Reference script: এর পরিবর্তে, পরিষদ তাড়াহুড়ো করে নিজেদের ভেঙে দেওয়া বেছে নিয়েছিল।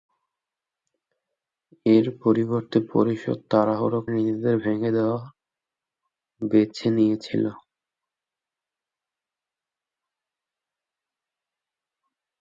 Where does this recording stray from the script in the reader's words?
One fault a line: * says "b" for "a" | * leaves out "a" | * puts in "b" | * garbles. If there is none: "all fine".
* leaves out "করে"